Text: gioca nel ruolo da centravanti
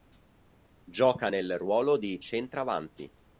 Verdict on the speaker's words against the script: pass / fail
fail